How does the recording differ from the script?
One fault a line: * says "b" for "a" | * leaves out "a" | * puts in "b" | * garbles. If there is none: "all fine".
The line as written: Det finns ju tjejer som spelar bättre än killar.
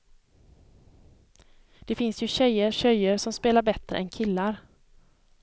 * puts in "tjejer"